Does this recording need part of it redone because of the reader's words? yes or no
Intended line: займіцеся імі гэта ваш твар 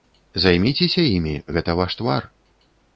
no